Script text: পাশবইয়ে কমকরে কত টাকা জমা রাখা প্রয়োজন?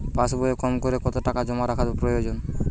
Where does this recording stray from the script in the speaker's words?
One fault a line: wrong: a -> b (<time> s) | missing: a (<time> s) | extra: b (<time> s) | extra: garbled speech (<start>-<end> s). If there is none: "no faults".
no faults